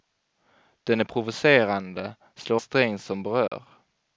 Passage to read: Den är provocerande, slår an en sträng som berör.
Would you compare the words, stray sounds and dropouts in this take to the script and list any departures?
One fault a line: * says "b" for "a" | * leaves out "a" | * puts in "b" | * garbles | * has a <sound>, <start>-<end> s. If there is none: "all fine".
* leaves out "an en"
* has a dropout, 3.5-3.5 s